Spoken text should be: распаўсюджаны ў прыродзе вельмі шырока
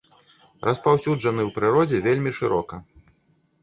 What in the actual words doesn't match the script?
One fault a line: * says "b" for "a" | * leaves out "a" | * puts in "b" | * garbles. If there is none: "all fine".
all fine